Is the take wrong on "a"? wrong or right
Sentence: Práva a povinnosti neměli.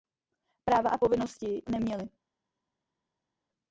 right